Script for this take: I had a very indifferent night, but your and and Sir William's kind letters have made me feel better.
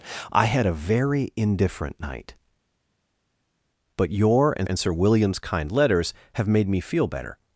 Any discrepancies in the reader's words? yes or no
no